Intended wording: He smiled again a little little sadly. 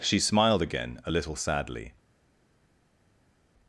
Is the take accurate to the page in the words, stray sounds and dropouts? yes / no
no